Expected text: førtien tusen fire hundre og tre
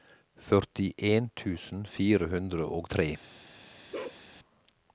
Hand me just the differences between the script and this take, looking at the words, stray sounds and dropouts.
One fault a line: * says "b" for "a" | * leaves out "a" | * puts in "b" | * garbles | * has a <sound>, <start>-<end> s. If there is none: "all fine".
* has a bark, 3.9-4.2 s